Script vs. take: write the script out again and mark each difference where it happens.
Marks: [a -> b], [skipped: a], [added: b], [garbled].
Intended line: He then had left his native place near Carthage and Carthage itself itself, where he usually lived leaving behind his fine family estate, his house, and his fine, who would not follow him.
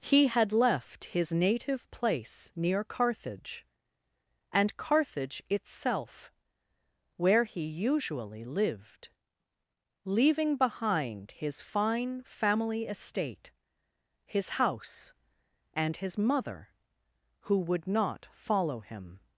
He [skipped: then] had left his native place near Carthage and Carthage itself [skipped: itself,] where he usually lived leaving behind his fine family estate, his house, and his [fine, -> mother] who would not follow him.